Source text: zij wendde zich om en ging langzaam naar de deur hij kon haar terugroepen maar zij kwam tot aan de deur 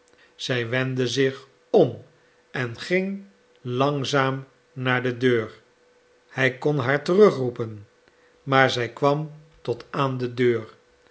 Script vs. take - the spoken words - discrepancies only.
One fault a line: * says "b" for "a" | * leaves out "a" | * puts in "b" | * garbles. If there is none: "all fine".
all fine